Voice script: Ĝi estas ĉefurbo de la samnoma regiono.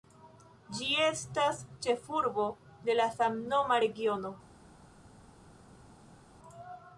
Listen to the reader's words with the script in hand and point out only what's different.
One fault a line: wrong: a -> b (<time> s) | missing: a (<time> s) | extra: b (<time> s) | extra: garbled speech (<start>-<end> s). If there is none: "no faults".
no faults